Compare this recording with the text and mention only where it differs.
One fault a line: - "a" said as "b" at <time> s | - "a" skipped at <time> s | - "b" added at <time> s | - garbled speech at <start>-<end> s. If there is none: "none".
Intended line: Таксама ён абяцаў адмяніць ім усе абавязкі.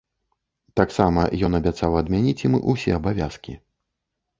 none